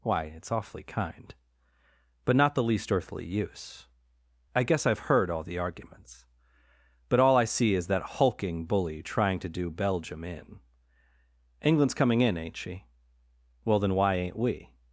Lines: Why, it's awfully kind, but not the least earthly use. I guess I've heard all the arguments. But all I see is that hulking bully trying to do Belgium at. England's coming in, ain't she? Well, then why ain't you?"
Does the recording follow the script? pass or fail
fail